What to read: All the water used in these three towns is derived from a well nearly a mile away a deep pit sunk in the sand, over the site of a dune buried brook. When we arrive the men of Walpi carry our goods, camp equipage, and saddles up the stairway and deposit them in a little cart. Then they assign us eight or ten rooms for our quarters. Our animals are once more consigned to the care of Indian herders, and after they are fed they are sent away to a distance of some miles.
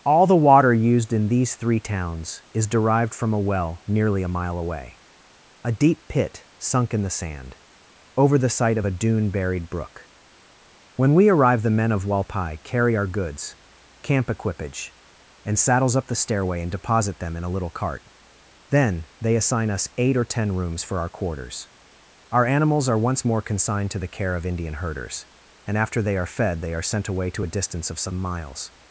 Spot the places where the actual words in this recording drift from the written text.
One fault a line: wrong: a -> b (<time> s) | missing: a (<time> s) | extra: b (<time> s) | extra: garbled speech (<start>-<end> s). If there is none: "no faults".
no faults